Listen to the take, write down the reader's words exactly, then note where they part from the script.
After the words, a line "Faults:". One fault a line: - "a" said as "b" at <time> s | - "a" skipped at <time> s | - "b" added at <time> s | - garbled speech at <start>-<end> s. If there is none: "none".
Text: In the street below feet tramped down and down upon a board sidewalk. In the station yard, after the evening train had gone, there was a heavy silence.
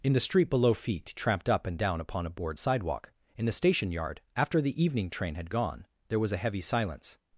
In the street below feet tramped up and down upon a board sidewalk. In the station yard, after the evening train had gone, there was a heavy silence.
Faults:
- "down" said as "up" at 1.5 s